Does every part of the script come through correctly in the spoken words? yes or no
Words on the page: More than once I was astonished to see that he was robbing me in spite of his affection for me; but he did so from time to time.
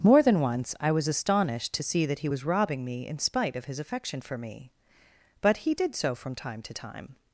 yes